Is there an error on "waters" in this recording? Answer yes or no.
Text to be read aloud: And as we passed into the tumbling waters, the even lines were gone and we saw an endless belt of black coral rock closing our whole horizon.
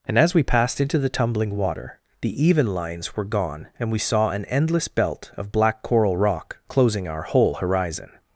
yes